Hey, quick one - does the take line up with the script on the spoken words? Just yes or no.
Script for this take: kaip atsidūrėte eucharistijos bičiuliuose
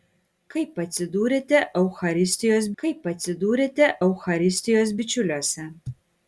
no